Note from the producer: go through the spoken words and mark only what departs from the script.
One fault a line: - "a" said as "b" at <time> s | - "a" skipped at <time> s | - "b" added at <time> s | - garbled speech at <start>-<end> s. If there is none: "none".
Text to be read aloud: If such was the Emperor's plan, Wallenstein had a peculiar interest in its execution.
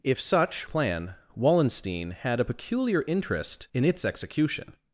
- "was the Emperor's" skipped at 0.7 s